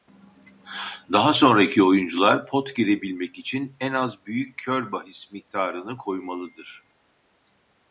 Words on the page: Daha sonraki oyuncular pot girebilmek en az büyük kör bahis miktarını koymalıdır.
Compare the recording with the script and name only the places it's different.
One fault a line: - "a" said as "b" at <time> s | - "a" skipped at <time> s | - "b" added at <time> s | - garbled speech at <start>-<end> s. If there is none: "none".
- "için" added at 3.4 s